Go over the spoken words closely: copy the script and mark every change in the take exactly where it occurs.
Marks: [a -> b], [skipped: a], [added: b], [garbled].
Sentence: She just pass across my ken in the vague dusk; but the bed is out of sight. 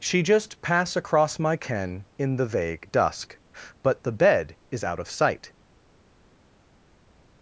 She just pass across my ken in the vague dusk; but the bed is out of sight.